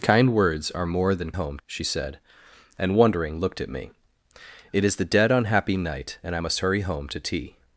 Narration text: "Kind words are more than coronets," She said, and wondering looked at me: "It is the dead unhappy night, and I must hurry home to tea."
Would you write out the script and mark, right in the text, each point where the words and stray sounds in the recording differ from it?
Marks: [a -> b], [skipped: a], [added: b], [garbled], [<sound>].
"Kind words are more than [coronets," -> home] She said, and wondering looked at me: "It is the dead unhappy night, and I must hurry home to tea."